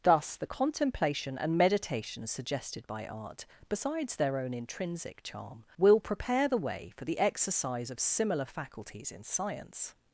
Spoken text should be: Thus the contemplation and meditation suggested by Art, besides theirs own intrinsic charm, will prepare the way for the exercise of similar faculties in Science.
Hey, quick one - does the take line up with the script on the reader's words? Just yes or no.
no